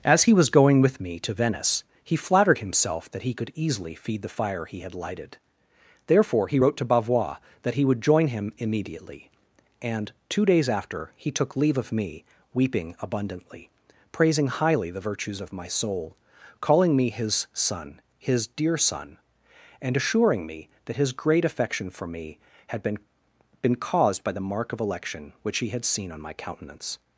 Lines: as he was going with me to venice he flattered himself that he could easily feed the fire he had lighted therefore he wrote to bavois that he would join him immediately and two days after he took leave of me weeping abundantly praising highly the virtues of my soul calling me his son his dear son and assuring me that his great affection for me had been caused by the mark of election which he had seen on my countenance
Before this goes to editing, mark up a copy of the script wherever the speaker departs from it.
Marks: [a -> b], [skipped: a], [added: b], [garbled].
as he was going with me to venice he flattered himself that he could easily feed the fire he had lighted therefore he wrote to bavois that he would join him immediately and two days after he took leave of me weeping abundantly praising highly the virtues of my soul calling me his son his dear son and assuring me that his great affection for me had been [added: been] caused by the mark of election which he had seen on my countenance